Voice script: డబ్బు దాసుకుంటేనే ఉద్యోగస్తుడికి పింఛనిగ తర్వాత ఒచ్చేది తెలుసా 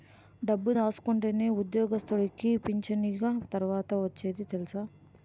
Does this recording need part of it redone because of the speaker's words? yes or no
no